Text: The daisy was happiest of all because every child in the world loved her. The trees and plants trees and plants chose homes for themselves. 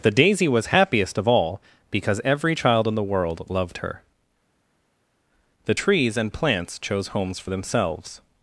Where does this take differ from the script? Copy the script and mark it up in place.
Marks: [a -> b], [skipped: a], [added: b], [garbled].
The daisy was happiest of all because every child in the world loved her. The trees and plants [skipped: trees and plants] chose homes for themselves.